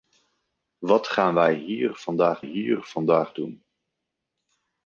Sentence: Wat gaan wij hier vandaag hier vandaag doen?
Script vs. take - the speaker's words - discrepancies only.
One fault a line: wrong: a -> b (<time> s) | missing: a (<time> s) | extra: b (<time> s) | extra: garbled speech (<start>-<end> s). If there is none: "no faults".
no faults